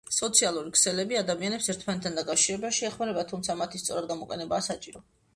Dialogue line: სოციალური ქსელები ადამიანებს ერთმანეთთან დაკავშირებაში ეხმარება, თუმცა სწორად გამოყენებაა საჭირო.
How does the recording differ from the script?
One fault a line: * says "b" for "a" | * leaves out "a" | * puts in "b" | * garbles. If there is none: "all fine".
* puts in "მათი"